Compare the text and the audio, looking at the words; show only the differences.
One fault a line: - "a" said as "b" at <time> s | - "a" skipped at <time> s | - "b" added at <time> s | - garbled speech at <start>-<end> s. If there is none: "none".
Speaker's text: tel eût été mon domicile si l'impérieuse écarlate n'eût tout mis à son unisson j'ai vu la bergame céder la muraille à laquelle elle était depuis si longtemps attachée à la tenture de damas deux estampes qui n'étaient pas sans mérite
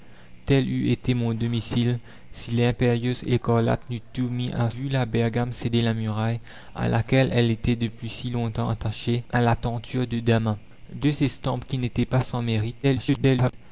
- "son unisson j'ai" skipped at 4.7 s
- garbled speech at 12.8-13.5 s